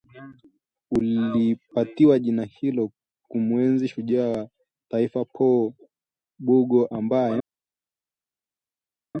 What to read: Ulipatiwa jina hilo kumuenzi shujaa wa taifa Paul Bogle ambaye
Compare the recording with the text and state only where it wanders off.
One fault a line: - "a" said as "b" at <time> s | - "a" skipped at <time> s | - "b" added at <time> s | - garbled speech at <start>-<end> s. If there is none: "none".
none